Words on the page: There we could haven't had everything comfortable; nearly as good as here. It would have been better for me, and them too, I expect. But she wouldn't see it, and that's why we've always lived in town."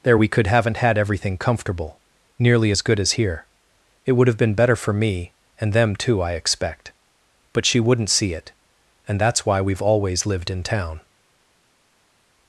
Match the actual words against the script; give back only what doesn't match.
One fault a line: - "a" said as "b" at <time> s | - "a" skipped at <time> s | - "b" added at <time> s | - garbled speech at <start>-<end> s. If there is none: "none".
none